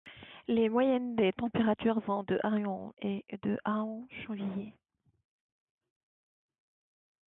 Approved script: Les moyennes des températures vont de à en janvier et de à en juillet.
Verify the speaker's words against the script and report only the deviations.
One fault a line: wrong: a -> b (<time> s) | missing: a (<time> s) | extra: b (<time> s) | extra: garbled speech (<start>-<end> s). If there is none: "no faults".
missing: janvier (2.9 s)